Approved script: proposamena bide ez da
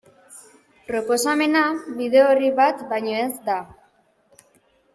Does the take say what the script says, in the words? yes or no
no